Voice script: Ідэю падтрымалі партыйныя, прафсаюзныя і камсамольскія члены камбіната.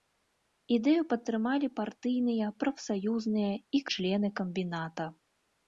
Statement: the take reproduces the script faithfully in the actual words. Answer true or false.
false